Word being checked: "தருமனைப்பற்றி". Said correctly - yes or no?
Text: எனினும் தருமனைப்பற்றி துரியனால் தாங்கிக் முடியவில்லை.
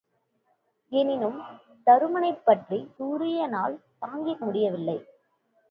yes